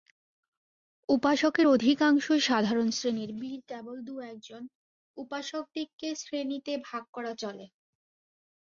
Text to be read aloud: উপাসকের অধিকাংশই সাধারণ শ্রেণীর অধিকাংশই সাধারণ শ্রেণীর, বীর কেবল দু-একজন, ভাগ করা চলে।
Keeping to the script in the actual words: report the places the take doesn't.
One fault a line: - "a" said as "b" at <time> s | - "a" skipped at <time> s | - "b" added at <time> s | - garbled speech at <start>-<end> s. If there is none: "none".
- "অধিকাংশই সাধারণ শ্রেণীর" skipped at 3.3 s
- "উপাসকদিগকে শ্রেণীতে" added at 5.2 s